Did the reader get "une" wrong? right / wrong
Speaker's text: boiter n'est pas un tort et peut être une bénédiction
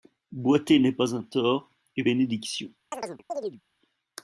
wrong